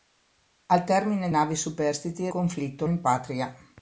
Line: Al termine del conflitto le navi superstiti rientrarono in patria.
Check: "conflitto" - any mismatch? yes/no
yes